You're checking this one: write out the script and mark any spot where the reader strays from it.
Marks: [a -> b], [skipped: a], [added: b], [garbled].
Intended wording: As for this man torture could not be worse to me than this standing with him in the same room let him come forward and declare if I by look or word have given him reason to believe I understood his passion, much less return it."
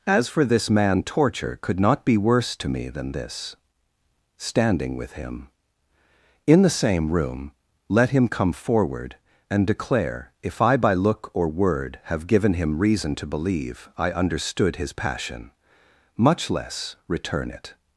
As for this man torture could not be worse to me than this standing with him in the same room let him come forward and declare if I by look or word have given him reason to believe I understood his passion, much less return it."